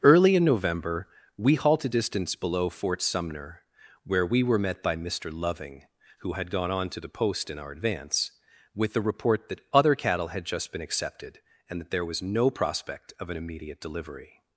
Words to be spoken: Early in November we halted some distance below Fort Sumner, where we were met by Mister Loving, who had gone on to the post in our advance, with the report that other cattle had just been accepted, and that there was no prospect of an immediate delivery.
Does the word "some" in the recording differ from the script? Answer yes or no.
yes